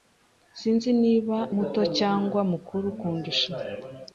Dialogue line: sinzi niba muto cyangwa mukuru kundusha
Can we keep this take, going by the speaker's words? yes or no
yes